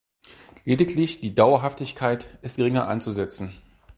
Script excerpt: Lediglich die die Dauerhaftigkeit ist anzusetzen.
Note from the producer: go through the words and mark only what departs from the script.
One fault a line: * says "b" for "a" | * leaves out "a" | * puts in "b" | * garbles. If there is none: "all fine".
* leaves out "die"
* puts in "geringer"